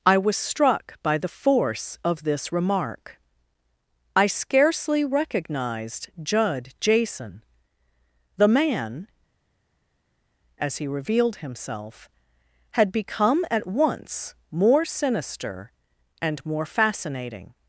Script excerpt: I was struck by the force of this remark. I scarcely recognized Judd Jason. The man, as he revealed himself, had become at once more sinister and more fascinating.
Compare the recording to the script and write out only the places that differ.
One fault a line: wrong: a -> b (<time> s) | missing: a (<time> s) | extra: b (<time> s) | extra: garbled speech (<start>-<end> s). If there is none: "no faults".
no faults